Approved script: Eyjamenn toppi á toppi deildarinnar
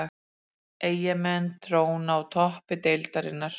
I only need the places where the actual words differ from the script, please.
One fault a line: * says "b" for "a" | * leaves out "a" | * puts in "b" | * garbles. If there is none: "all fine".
* says "tróna" for "toppi"